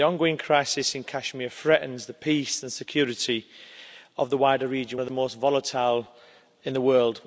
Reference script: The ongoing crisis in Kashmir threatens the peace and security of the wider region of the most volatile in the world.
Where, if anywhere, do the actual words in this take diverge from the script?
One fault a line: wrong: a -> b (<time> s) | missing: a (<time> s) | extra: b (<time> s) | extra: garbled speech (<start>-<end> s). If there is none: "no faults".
no faults